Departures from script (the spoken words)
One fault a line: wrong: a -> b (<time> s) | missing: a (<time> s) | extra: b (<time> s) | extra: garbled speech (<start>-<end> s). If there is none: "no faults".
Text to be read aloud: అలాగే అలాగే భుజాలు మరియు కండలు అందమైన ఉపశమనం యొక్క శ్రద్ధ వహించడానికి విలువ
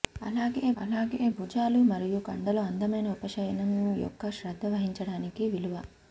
no faults